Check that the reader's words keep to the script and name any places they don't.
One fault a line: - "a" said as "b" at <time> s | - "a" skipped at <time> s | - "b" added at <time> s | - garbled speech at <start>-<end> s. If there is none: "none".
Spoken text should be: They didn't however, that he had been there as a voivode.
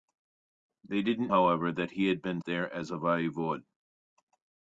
none